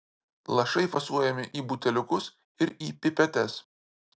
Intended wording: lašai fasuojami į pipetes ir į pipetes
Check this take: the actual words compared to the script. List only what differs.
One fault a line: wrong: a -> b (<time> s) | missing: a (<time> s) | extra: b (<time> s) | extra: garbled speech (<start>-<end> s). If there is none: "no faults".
wrong: pipetes -> buteliukus (1.7 s)